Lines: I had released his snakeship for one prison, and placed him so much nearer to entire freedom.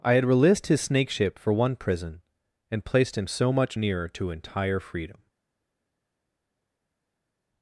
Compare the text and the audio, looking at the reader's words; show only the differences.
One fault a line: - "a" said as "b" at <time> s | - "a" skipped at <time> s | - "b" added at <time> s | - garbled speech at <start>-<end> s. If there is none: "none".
none